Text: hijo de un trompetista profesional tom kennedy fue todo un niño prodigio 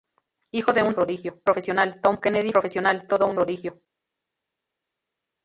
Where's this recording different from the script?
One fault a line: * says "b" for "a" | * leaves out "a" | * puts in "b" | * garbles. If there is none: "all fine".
* says "prodigio" for "trompetista"
* says "profesional" for "fue"
* leaves out "niño"